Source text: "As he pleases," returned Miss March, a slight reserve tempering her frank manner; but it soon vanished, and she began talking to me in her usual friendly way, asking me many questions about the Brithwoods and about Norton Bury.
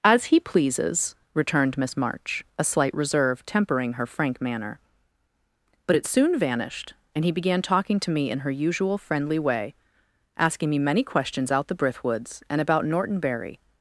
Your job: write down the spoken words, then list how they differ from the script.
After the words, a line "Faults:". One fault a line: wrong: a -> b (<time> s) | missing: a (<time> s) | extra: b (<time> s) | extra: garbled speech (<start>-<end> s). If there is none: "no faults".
"As he pleases," returned Miss March, a slight reserve tempering her frank manner; but it soon vanished, and he began talking to me in her usual friendly way, asking me many questions out the Brithwoods and about Norton Bury.
Faults:
wrong: she -> he (7.2 s)
wrong: about -> out (11.5 s)